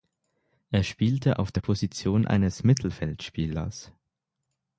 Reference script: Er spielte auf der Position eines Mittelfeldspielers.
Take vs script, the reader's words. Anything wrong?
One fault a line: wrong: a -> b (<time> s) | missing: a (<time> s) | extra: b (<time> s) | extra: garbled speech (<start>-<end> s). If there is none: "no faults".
no faults